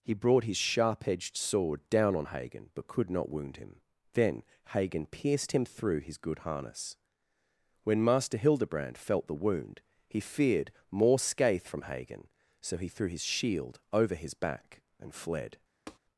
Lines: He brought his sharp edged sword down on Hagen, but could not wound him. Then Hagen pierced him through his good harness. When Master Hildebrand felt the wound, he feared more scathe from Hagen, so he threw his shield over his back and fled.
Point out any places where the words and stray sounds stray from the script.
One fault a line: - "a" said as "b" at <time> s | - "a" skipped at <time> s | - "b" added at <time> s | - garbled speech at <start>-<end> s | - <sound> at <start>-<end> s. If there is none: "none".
- tap at 15.9-16.0 s